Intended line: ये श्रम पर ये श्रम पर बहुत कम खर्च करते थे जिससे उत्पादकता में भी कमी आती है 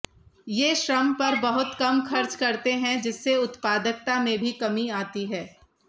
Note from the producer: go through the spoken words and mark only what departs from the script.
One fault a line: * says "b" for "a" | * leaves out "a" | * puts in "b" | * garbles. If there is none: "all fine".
* leaves out "ये श्रम पर"
* says "हैं" for "थे"